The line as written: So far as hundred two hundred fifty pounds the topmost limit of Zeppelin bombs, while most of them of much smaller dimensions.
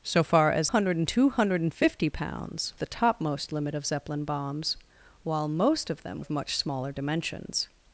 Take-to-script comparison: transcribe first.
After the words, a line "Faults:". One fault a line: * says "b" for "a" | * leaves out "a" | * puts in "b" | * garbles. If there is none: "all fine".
So far as hundred two hundred fifty pounds the topmost limit of Zeppelin bombs, while most of them of much smaller dimensions.
Faults:
all fine